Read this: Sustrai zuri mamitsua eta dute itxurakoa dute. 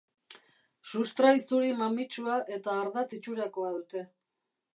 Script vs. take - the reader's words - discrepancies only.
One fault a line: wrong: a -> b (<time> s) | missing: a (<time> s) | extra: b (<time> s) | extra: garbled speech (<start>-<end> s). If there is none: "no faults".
wrong: dute -> ardatz (2.9 s)